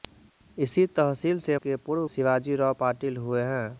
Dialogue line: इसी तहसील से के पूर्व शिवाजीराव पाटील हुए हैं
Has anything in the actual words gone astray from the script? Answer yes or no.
no